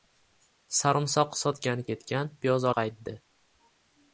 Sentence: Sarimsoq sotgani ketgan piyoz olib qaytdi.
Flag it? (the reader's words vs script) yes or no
yes